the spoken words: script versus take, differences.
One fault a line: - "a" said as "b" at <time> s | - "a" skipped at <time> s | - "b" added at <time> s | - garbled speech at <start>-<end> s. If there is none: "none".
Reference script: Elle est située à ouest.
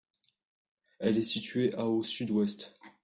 - "au sud" added at 1.9 s